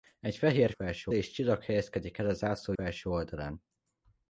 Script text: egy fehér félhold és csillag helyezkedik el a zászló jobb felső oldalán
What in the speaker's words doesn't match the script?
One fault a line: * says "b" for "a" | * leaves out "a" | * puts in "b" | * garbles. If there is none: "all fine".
* says "felső" for "félhold"
* leaves out "jobb"